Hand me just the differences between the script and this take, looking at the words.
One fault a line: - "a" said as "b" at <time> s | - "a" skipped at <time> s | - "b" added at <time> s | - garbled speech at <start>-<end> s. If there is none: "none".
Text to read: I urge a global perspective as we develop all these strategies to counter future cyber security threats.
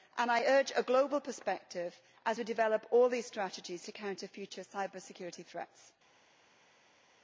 none